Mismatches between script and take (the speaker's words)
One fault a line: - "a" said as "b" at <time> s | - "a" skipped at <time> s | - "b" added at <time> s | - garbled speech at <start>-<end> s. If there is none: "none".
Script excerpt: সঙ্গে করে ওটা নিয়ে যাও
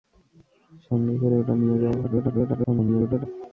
- garbled speech at 2.0-3.3 s